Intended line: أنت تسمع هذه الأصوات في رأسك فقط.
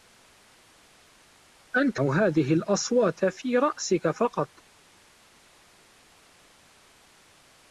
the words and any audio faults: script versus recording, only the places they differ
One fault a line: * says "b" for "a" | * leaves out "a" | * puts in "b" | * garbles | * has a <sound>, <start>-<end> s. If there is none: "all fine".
* leaves out "تسمع"